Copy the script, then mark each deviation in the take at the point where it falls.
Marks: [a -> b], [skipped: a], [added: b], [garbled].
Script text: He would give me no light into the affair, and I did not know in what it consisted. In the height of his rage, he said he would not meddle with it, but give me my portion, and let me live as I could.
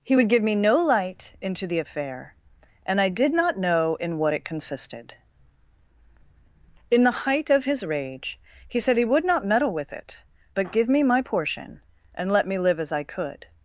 He would give me no light into the affair, and I did not know in what it consisted. In the height of his rage, he said he would not meddle with it, but give me my portion, and let me live as I could.